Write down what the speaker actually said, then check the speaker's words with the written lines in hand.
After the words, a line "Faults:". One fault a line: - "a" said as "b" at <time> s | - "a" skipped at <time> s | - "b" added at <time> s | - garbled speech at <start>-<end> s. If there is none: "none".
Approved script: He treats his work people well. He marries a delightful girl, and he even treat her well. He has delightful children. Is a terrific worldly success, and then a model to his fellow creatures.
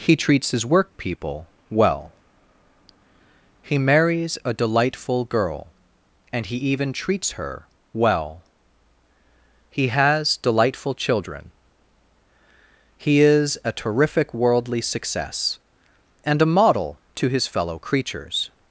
He treats his work people well. He marries a delightful girl, and he even treats her well. He has delightful children. He is a terrific worldly success, and a model to his fellow creatures.
Faults:
- "treat" said as "treats" at 6.9 s
- "He" added at 13.0 s
- "then" skipped at 16.4 s